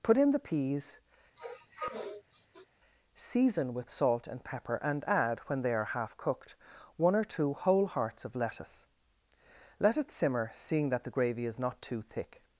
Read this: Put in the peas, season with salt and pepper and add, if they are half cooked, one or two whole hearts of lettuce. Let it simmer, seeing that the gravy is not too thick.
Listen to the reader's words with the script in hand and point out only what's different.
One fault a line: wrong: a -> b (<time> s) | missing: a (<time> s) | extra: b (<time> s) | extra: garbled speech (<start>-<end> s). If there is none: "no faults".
wrong: if -> when (5.4 s)